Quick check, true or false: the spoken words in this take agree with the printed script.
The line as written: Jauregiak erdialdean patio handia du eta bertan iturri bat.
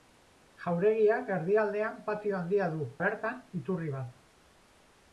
false